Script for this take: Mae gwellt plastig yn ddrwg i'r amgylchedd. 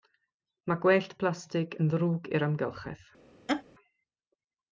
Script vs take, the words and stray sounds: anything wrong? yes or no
yes